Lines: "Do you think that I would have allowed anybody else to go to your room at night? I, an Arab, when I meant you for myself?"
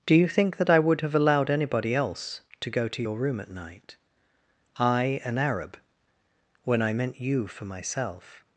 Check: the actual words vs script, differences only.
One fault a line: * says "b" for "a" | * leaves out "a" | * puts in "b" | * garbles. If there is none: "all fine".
all fine